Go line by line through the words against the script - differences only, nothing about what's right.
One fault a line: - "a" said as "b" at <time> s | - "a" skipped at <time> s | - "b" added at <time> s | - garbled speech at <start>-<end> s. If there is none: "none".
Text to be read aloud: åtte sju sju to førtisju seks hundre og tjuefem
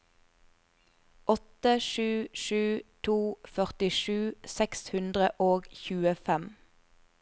none